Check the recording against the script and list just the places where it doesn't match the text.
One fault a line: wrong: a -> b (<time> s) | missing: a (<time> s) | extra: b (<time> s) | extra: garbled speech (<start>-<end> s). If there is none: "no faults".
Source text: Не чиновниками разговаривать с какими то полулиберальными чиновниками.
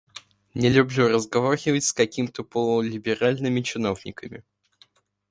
wrong: чиновниками -> люблю (0.7 s)